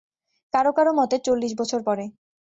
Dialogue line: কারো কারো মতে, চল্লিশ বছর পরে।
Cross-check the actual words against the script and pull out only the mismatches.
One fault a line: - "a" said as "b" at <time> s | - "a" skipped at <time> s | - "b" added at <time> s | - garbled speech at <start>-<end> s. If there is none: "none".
none